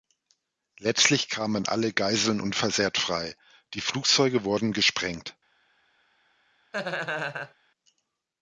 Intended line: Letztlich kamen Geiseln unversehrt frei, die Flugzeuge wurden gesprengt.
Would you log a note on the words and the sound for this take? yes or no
yes